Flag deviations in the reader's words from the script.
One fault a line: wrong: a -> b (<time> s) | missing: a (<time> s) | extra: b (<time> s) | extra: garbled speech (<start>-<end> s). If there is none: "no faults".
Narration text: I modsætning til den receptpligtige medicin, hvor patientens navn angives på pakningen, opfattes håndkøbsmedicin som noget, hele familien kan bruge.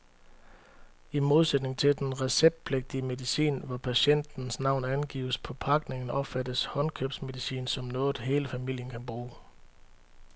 no faults